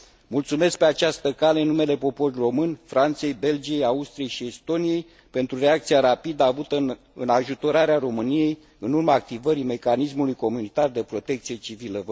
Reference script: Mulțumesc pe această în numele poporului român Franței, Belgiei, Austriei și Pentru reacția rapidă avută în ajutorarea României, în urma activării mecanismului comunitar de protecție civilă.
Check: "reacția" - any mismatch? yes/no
no